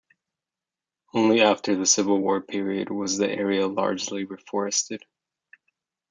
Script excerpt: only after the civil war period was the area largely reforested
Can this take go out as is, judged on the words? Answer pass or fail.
pass